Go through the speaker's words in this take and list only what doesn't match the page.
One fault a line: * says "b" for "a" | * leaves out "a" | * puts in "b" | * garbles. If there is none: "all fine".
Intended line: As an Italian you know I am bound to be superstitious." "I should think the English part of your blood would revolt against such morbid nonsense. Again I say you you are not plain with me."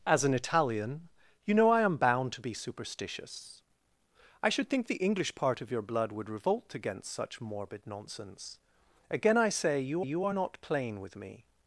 all fine